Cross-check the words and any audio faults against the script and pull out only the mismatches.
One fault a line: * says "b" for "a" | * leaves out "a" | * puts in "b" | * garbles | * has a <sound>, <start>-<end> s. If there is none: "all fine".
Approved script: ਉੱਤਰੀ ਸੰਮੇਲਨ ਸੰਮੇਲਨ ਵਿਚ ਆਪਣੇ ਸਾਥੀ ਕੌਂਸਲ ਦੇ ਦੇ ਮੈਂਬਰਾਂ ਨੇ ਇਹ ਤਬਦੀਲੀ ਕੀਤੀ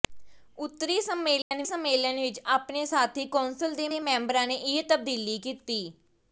* has a dropout, 1.4-1.5 s